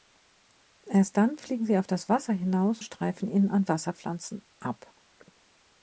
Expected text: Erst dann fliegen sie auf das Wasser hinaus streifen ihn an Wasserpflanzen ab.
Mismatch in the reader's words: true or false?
false